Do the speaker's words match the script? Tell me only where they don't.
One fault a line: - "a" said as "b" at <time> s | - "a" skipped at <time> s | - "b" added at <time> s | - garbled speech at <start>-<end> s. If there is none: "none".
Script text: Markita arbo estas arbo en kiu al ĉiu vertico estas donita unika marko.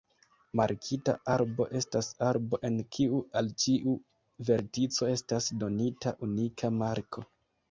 none